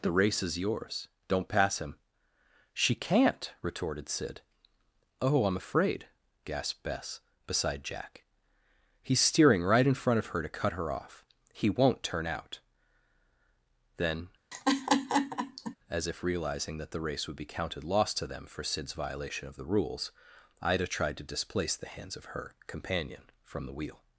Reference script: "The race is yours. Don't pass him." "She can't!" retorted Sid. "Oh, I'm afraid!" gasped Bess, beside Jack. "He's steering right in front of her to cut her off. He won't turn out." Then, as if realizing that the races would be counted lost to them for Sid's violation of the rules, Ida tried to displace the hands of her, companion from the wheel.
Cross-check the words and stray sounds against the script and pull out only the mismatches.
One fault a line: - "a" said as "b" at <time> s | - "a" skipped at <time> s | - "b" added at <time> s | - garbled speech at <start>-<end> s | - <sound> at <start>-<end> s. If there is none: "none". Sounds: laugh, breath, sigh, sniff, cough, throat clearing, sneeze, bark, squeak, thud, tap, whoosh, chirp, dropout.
- laugh at 14.5-15.8 s
- "races" said as "race" at 17.0 s